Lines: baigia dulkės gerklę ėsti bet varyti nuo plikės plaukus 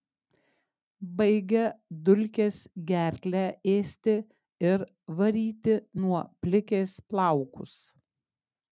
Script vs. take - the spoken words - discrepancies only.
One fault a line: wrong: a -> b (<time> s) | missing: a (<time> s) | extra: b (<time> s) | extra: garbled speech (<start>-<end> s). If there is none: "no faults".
wrong: bet -> ir (4.7 s)